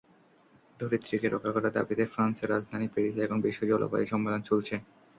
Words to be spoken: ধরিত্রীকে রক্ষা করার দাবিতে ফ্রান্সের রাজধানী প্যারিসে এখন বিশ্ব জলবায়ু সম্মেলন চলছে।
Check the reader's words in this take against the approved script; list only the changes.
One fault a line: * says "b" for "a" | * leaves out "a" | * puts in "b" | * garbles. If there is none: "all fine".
all fine